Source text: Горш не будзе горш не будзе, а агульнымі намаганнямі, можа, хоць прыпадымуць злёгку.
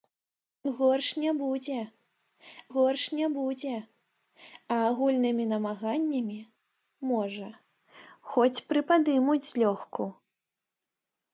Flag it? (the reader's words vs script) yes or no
no